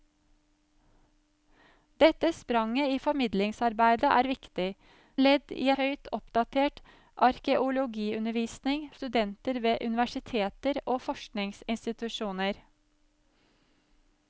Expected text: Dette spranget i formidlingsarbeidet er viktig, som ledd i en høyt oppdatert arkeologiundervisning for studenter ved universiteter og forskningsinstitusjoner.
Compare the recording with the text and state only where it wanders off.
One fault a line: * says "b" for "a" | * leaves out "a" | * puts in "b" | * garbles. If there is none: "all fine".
* leaves out "som"
* leaves out "en"
* leaves out "for"